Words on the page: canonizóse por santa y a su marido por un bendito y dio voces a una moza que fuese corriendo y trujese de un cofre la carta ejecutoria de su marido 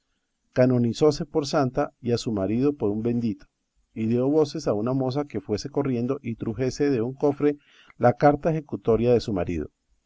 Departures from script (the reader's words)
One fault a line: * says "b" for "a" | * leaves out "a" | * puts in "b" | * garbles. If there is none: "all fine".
all fine